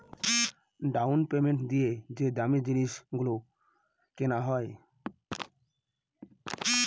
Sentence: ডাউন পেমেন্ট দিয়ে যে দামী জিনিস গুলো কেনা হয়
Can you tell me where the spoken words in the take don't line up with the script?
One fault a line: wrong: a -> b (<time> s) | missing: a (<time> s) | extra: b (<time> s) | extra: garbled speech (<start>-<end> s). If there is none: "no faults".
no faults